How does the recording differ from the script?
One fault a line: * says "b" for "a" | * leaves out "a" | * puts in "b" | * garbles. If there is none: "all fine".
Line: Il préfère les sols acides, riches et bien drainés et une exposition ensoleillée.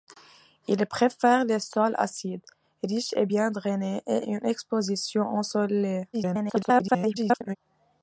* garbles